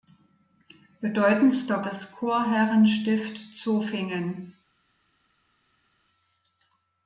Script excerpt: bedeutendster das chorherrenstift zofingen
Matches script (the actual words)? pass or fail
pass